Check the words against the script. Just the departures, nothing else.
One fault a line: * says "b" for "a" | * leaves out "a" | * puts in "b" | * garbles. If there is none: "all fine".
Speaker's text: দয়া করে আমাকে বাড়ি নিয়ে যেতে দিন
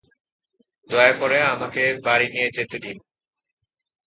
all fine